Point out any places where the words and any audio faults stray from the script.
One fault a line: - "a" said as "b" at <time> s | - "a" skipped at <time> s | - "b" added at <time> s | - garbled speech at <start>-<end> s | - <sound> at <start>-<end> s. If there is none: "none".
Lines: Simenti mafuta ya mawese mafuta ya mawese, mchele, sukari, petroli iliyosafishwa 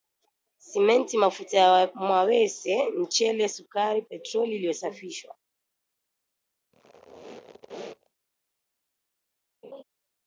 - "mafuta ya mawese" skipped at 2.9 s
- squeak at 6.7-8.1 s
- laugh at 9.6-9.8 s